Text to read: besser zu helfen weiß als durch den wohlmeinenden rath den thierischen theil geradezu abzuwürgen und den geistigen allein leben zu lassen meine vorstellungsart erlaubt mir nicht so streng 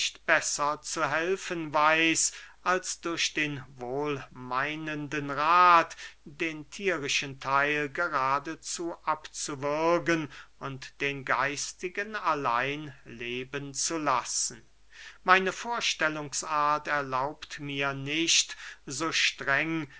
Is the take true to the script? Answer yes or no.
yes